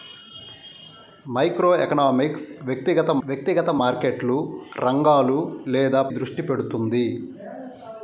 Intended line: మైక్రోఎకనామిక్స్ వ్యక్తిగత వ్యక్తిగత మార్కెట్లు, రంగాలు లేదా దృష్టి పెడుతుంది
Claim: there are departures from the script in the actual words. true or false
false